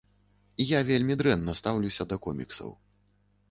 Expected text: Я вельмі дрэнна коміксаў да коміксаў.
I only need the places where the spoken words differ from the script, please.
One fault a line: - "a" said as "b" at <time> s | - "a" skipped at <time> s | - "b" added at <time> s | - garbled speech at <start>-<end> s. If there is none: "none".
- "коміксаў" said as "стаўлюся" at 1.6 s